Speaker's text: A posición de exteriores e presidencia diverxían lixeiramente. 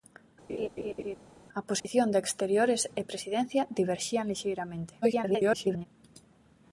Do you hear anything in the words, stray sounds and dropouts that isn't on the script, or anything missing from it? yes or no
yes